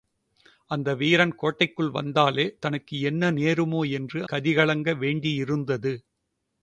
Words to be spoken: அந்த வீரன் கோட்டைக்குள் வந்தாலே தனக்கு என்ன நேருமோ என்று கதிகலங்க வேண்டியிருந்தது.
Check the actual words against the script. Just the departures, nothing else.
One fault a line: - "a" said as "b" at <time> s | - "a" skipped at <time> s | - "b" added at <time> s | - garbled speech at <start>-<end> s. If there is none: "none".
none